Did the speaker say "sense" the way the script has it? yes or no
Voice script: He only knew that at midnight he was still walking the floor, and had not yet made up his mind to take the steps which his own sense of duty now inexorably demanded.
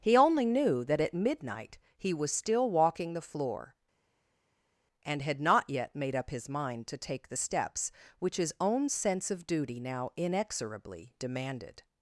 yes